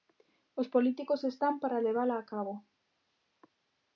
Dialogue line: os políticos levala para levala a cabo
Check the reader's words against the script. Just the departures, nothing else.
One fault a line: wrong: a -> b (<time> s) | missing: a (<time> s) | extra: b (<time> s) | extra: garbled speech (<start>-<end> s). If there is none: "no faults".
wrong: levala -> están (1.3 s)